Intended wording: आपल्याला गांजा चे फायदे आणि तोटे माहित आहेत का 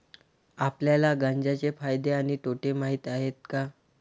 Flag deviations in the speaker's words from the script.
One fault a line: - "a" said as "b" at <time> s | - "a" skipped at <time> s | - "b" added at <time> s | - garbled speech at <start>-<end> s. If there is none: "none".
none